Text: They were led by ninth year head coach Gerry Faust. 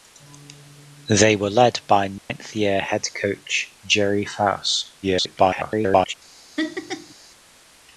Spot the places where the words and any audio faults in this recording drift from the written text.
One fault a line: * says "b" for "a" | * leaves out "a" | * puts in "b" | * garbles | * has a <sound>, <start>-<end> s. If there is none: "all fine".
* has a dropout, 2.2-2.3 s
* garbles
* has a laugh, 6.6-7.1 s